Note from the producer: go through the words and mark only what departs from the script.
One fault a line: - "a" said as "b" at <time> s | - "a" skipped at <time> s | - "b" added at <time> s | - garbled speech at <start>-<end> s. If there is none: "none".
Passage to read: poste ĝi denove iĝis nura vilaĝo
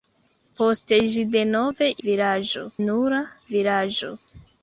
- "iĝis" said as "vilaĝo" at 2.1 s